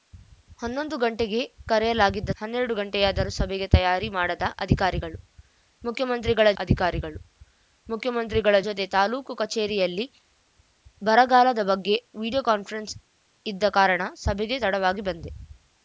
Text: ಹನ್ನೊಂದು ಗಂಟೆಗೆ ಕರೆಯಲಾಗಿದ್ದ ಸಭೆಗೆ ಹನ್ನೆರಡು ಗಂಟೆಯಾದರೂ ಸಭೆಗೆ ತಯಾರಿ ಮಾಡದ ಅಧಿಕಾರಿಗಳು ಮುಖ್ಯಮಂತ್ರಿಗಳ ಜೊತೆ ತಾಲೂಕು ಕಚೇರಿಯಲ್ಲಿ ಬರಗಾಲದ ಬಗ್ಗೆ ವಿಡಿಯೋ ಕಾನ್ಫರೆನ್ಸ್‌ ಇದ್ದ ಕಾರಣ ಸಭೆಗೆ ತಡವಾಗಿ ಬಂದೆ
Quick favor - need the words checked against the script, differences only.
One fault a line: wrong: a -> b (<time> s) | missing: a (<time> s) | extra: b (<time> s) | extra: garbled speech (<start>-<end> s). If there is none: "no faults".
missing: ಸಭೆಗೆ (2.3 s)
extra: ಅಧಿಕಾರಿಗಳು ಮುಖ್ಯಮಂತ್ರಿಗಳ (6.6 s)